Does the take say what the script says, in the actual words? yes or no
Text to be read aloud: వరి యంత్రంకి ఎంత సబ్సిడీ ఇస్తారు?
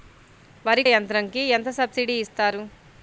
yes